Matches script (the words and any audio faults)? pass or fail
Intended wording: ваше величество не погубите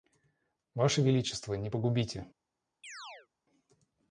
fail